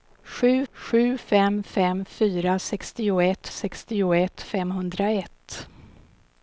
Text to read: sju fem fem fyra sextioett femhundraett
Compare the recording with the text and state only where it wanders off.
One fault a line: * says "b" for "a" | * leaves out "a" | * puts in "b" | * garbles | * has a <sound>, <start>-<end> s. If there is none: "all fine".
* puts in "sju"
* puts in "sextioett"